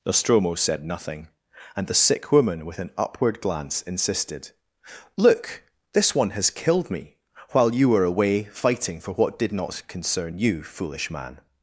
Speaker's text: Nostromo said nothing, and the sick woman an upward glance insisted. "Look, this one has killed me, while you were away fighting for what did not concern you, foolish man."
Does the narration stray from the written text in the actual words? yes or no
yes